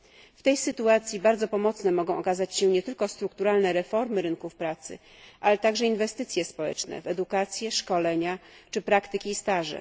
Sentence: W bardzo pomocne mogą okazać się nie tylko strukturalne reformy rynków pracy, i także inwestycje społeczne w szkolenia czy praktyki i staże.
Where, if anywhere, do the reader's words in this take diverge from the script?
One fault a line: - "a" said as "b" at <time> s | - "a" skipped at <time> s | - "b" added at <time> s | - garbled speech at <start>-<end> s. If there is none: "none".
- "tej sytuacji" added at 0.4 s
- "i" said as "ale" at 5.4 s
- "edukację" added at 7.1 s